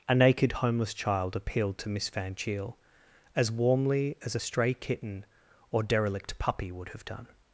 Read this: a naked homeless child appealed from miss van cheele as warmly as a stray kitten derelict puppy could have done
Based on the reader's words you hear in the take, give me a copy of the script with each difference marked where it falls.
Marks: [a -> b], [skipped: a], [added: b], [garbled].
a naked homeless child appealed [from -> to] miss van cheele as warmly as a stray kitten [added: or] derelict puppy [could -> would] have done